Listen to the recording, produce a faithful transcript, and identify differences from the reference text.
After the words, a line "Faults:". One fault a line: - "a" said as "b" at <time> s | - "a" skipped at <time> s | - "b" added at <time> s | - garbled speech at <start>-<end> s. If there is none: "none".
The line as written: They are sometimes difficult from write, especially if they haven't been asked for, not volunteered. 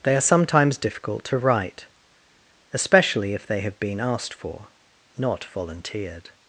They are sometimes difficult to write, especially if they have been asked for, not volunteered.
Faults:
- "from" said as "to" at 1.2 s
- "haven't" said as "have" at 3.6 s